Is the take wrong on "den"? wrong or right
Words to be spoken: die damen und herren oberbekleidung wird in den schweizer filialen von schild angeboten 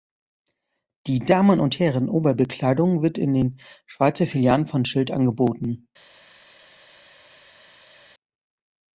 right